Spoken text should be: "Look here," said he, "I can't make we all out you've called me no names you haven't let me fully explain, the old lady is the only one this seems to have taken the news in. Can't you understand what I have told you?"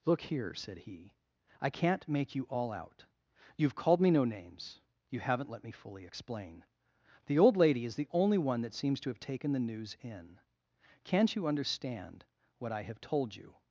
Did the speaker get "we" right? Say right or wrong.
wrong